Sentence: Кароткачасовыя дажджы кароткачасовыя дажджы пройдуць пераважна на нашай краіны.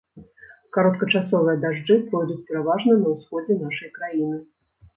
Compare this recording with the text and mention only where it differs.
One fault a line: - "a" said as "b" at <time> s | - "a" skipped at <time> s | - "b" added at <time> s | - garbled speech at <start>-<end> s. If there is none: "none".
- "кароткачасовыя дажджы" skipped at 2.0 s
- "ўсходзе" added at 3.1 s